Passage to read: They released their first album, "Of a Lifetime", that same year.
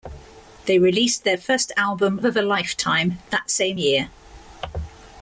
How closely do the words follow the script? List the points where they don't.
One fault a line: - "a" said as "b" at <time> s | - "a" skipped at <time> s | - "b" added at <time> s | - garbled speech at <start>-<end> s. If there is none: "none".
none